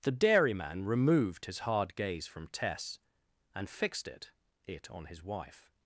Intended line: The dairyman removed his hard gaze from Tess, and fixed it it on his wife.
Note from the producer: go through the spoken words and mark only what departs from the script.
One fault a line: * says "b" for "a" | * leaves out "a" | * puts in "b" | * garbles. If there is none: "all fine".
all fine